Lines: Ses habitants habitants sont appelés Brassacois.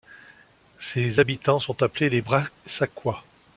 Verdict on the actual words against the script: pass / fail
fail